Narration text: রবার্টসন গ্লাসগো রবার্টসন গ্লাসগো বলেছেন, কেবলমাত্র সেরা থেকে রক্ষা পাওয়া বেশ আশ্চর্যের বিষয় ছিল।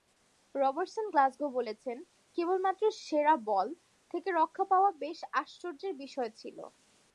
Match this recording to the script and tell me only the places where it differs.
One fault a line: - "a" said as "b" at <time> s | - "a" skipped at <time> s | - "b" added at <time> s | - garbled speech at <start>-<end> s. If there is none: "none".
- "রবার্টসন গ্লাসগো" skipped at 1.5 s
- "বল" added at 3.5 s